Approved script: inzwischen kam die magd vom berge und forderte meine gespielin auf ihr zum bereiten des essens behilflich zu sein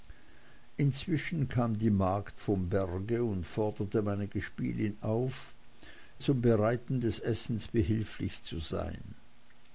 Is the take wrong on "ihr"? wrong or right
wrong